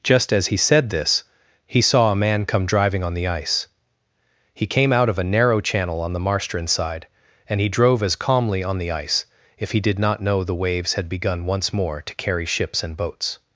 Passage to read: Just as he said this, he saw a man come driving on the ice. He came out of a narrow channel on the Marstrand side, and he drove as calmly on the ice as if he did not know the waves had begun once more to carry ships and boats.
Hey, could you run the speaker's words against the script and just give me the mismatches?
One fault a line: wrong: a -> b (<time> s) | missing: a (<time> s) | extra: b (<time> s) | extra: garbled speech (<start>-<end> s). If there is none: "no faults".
missing: as (9.2 s)